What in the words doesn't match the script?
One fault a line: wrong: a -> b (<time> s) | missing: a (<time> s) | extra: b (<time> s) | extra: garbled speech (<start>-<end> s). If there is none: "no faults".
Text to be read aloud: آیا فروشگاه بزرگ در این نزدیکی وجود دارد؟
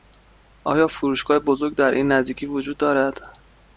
no faults